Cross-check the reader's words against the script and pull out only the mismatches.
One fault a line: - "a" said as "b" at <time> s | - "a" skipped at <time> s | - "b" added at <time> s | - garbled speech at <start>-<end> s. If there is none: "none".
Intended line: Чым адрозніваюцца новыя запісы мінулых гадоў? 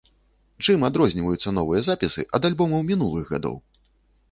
- "ад альбомаў" added at 2.4 s